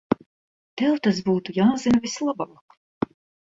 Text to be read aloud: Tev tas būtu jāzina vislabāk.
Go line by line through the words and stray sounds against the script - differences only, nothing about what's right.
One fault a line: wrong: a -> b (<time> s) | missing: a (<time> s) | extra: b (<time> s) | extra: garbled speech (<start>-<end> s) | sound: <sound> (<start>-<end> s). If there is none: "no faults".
no faults